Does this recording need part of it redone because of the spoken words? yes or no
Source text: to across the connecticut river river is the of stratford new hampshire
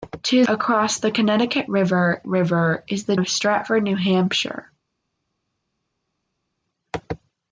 no